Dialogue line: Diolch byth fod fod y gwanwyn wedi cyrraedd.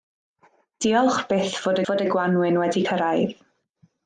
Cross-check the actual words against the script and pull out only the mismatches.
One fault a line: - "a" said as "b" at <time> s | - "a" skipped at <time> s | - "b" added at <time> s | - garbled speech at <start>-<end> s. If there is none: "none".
none